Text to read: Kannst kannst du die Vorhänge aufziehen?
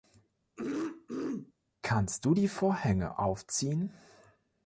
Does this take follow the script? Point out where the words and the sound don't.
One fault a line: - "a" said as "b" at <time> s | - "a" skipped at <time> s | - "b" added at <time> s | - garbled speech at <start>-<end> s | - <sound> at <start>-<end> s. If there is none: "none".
- throat clearing at 0.6-1.5 s
- "kannst" skipped at 2.3 s